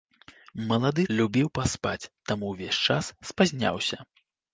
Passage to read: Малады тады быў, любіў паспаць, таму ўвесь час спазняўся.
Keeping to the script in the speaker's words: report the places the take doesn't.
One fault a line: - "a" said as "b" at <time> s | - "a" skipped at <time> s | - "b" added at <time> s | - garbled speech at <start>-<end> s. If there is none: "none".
- "тады быў" skipped at 1.0 s